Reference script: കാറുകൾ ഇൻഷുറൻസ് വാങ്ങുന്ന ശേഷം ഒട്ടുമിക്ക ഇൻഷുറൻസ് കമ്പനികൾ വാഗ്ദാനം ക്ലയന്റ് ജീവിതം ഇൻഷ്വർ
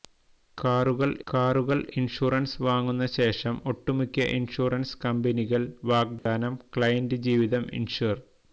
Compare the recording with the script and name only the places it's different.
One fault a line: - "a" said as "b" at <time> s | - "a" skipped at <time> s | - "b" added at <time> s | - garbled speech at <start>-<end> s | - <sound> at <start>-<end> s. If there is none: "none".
- "കാറുകൾ" added at 1.3 s
- dropout at 6.2-6.3 s